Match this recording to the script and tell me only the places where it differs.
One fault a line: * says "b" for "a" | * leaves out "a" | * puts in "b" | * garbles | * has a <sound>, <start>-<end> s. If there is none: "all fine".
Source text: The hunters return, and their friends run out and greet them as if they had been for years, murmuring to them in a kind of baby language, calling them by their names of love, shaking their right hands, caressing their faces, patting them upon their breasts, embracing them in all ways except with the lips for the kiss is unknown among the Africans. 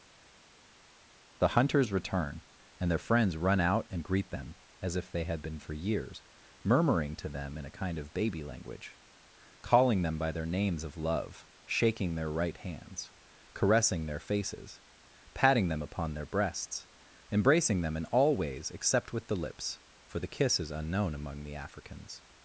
all fine